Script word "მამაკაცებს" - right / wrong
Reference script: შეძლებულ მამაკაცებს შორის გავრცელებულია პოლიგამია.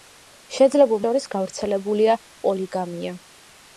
wrong